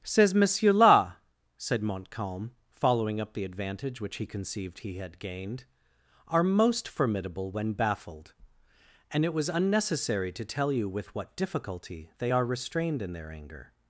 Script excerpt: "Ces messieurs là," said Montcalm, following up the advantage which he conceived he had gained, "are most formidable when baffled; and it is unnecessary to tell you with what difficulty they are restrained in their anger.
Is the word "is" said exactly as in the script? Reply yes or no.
no